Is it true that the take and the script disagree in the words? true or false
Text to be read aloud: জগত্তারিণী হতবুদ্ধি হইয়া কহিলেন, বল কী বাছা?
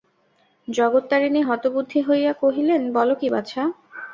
false